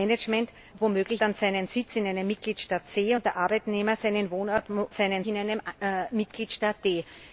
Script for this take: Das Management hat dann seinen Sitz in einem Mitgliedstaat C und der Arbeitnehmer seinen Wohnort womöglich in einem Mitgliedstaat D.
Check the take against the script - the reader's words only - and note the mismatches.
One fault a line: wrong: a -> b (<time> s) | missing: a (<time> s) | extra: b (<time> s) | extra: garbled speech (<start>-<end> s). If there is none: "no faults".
wrong: hat -> womöglich (0.8 s)
wrong: womöglich -> seinen (4.9 s)